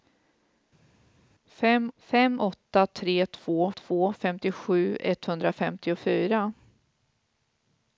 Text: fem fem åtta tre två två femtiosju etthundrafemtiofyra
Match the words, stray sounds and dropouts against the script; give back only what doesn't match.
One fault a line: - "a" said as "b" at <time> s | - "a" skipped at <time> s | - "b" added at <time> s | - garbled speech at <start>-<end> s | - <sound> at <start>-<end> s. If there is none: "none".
none